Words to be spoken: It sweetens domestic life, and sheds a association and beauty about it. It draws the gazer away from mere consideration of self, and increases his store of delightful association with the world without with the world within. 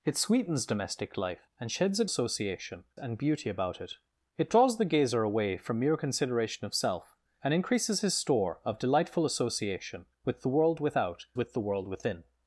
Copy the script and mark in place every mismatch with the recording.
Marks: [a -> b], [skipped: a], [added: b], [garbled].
It sweetens domestic life, and sheds a association and beauty about it. It draws the gazer away from mere consideration of self, and increases his store of delightful association with the world without with the world within.